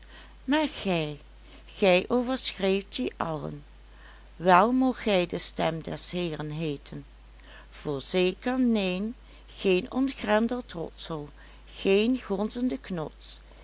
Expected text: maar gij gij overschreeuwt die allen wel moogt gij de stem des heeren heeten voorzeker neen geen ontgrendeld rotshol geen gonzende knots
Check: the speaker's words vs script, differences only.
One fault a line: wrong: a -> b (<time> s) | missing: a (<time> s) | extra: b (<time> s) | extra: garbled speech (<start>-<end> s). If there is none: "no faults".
no faults